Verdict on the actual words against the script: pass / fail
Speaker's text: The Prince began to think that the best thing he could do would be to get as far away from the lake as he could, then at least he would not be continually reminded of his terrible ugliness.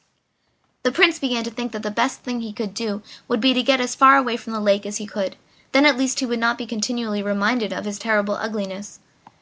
pass